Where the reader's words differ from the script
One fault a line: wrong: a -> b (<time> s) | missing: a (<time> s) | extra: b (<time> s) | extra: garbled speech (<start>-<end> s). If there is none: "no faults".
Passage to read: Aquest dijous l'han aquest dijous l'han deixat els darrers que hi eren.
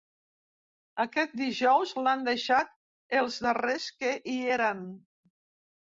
missing: aquest dijous l'han (2.2 s)